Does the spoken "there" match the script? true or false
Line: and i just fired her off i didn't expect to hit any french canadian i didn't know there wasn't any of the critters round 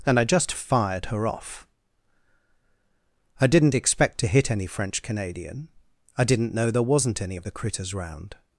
true